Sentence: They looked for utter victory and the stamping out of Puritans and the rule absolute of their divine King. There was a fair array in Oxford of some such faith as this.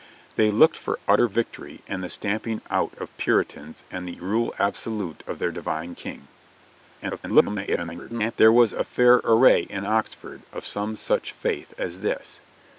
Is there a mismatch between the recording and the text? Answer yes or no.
yes